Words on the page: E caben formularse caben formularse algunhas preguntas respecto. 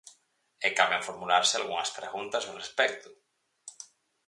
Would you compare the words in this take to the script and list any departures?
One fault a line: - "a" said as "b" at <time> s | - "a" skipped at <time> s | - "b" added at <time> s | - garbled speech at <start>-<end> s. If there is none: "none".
- "caben formularse" skipped at 1.5 s
- "ao" added at 2.4 s